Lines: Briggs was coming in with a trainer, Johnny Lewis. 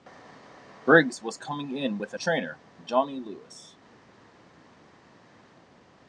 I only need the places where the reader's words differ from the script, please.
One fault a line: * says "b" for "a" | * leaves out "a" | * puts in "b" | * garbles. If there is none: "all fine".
all fine